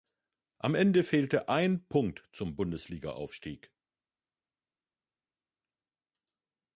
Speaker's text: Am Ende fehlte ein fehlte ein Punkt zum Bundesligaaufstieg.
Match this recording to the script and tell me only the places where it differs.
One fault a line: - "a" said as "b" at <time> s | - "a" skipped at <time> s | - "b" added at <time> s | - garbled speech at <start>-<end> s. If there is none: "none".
- "fehlte ein" skipped at 1.9 s